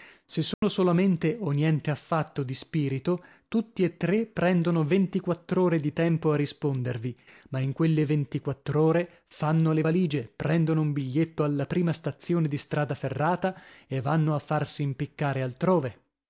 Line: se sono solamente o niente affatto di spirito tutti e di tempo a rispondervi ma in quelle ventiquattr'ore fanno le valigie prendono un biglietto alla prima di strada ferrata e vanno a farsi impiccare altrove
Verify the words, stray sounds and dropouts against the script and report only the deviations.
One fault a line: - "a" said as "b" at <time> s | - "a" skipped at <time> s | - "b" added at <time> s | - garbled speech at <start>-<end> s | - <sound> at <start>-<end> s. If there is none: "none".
- dropout at 0.5-0.6 s
- "tre prendono ventiquattr'ore" added at 4.0 s
- "stazione" added at 11.9 s